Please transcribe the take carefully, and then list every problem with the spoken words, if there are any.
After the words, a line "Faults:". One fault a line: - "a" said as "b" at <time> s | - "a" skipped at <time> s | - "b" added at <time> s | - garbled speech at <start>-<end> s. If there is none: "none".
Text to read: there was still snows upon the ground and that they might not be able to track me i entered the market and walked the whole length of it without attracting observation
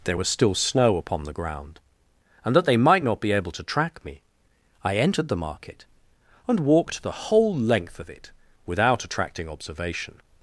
there was still snow upon the ground and that they might not be able to track me i entered the market and walked the whole length of it without attracting observation
Faults:
- "snows" said as "snow" at 0.6 s